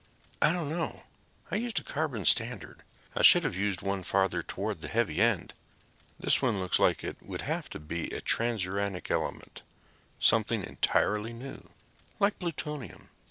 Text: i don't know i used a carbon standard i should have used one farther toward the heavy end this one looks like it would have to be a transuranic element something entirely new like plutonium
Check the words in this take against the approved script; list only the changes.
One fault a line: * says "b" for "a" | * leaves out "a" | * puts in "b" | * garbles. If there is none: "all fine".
all fine